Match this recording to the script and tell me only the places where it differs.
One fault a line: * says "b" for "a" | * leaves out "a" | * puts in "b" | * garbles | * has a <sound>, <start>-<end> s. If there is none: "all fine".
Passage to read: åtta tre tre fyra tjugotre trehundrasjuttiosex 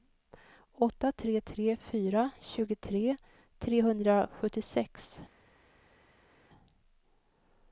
all fine